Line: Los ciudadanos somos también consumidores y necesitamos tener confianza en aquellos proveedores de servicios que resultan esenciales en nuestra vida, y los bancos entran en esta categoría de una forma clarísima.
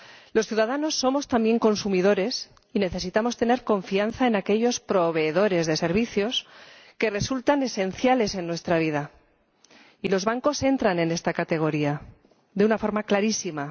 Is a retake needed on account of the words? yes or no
no